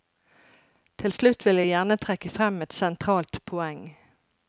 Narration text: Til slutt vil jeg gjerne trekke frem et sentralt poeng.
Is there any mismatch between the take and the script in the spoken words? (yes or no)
no